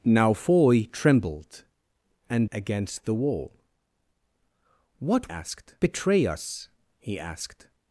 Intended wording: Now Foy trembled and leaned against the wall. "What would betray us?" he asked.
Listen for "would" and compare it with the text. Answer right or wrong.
wrong